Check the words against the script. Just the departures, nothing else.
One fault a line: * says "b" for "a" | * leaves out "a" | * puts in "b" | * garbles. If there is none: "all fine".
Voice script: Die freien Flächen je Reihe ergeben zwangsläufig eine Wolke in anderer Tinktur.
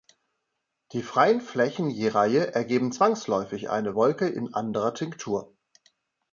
all fine